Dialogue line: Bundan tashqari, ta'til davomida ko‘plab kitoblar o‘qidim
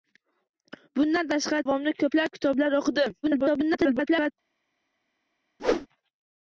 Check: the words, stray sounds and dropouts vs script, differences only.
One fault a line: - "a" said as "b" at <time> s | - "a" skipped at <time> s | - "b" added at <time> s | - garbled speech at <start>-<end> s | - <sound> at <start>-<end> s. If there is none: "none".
- "ta'til" skipped at 1.7 s
- garbled speech at 3.2-4.3 s
- whoosh at 5.6-5.9 s